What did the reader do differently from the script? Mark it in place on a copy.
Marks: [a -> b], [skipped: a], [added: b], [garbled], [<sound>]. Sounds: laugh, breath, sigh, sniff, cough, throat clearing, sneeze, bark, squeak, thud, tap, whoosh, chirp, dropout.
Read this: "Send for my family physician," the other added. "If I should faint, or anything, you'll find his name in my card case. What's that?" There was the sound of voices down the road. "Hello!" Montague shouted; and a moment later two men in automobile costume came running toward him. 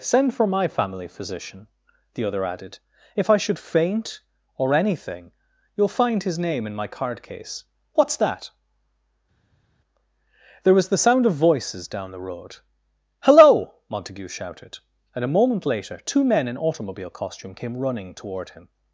"Send for my family physician," the other added. "If I should faint, or anything, you'll find his name in my card case. What's that?" There was the sound of voices down the road. "Hello!" Montague shouted; and a moment later two men in automobile costume came running toward him.